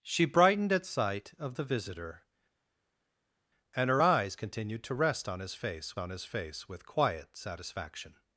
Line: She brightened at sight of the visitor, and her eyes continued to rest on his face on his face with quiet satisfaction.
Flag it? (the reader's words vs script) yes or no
no